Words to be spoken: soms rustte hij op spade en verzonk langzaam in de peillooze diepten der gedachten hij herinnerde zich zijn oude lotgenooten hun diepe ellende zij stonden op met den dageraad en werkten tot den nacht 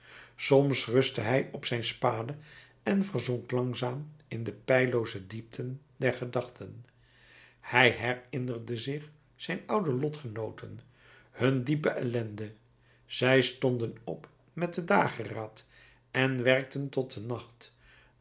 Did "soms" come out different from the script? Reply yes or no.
no